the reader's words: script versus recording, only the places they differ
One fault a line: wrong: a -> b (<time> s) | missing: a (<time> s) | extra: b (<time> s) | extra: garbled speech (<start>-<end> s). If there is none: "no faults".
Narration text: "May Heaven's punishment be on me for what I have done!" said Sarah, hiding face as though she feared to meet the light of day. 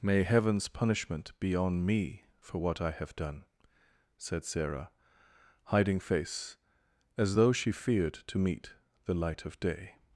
no faults